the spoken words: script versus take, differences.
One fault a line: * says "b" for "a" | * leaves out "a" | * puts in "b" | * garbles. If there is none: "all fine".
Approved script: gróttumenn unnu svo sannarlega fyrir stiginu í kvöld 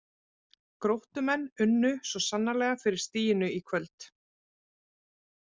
all fine